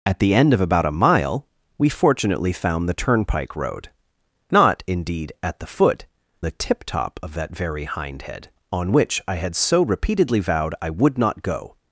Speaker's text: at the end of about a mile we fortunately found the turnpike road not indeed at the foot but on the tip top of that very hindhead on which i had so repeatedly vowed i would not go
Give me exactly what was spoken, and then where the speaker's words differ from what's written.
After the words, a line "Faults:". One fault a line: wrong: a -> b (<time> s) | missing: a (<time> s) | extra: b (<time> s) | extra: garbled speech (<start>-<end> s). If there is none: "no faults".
at the end of about a mile we fortunately found the turnpike road not indeed at the foot the tip top of that very hindhead on which i had so repeatedly vowed i would not go
Faults:
missing: but on (6.1 s)